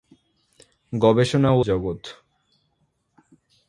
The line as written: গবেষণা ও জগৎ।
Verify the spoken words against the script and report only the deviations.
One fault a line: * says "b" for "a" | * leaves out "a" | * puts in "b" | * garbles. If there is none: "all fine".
all fine